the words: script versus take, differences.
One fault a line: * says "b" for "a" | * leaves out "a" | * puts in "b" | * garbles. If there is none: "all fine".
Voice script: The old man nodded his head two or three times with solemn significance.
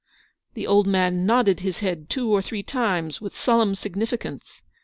all fine